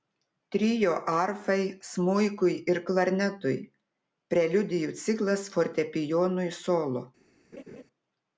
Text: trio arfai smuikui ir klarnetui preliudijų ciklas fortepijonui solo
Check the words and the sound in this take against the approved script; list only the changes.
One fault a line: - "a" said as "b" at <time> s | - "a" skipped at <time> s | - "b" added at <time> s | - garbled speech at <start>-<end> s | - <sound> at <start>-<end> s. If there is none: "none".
- laugh at 7.5-7.8 s